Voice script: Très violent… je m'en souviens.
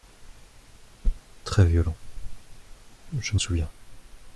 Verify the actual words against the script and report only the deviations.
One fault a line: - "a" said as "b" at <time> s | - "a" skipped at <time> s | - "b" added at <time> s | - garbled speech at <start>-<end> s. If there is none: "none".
- "m'en" skipped at 3.4 s